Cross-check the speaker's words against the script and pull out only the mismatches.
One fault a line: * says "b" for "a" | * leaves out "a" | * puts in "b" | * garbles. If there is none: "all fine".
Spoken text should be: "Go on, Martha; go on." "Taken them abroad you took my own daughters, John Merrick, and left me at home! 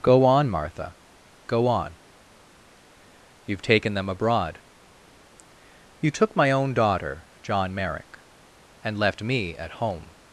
* puts in "You've"
* says "daughter" for "daughters"